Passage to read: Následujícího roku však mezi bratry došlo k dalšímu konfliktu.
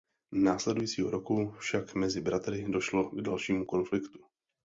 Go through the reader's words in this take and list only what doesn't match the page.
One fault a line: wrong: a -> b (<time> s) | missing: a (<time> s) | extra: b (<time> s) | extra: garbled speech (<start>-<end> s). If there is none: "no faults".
no faults